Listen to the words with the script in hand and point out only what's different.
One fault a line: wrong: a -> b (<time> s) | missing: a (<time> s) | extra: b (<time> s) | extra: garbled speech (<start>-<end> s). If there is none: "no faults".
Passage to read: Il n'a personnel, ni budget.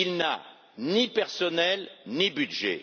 extra: ni (0.8 s)